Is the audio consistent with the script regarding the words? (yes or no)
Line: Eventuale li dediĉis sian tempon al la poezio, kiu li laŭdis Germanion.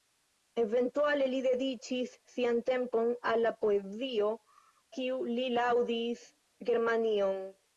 yes